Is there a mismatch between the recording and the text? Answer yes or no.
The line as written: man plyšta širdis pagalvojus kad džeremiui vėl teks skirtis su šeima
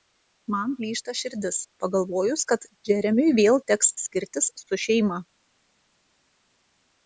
no